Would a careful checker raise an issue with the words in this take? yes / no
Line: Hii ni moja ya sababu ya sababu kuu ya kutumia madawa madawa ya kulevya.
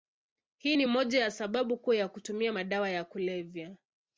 yes